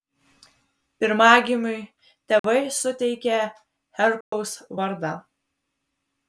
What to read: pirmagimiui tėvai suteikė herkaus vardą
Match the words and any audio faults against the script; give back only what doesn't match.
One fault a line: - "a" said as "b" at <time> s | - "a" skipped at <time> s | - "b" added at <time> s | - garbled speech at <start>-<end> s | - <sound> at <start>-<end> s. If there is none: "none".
- dropout at 2.4-2.4 s
- dropout at 4.2-4.3 s